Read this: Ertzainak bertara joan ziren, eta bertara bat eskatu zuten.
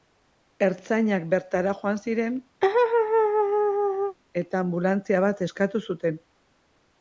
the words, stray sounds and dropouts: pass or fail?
fail